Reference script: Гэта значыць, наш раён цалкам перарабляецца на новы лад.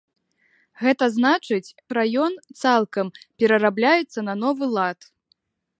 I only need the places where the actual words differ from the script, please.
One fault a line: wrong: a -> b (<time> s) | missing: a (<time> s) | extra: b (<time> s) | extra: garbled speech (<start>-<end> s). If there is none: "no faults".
missing: наш (1.8 s)